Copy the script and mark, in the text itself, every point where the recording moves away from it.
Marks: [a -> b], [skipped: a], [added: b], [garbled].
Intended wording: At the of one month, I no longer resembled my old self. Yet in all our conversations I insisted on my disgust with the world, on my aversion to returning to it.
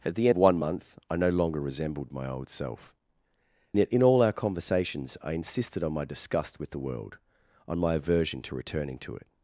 At the of one month, I no longer resembled my old self. Yet in all our conversations I insisted on my disgust with the world, on my aversion to returning to it.